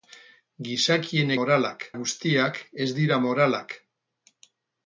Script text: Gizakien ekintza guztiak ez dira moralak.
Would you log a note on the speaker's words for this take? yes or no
yes